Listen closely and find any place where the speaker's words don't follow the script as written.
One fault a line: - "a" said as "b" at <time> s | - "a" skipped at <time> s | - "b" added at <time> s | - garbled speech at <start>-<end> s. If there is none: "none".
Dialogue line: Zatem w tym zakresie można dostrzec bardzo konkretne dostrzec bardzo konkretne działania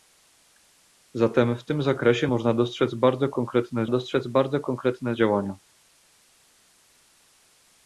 none